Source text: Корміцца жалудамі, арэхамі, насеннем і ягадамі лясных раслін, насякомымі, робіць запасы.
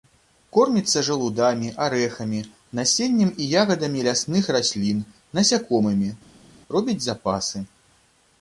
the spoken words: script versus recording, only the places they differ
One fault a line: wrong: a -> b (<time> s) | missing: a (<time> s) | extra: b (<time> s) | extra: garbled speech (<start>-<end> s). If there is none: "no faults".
no faults